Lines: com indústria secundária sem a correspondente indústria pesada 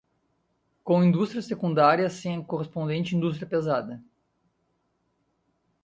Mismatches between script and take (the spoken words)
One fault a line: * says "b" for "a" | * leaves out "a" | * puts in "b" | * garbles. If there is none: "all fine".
all fine